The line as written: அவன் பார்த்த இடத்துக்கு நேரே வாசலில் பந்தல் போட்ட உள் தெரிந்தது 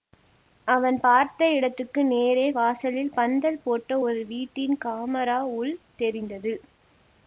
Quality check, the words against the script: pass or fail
fail